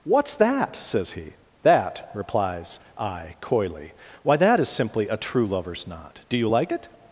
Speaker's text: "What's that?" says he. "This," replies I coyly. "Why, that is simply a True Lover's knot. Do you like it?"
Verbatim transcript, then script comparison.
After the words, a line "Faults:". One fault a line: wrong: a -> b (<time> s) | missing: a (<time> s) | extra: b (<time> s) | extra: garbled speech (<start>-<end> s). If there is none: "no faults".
"What's that?" says he. "That," replies I coyly. "Why, that is simply a True Lover's knot. Do you like it?"
Faults:
wrong: This -> That (1.6 s)